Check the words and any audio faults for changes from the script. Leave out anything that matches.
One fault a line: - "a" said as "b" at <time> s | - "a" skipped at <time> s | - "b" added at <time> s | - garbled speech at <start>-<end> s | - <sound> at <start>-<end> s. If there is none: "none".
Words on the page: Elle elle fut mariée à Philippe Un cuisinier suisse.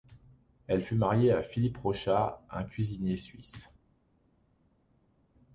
- "elle" skipped at 0.8 s
- "Rochat" added at 1.8 s